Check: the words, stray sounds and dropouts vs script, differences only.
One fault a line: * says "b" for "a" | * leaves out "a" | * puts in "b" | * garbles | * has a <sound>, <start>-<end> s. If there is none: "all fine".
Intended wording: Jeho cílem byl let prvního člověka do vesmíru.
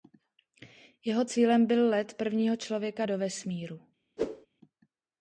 * has a whoosh, 4.2-4.5 s